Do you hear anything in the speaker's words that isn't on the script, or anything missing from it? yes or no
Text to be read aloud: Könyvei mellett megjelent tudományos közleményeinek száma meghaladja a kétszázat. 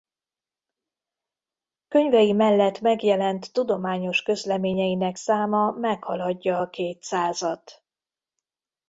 no